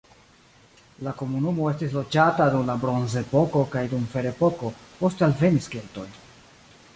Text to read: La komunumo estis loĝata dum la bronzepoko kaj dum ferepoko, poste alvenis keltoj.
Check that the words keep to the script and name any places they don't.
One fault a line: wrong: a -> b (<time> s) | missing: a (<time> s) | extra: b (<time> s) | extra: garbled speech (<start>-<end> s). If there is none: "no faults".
no faults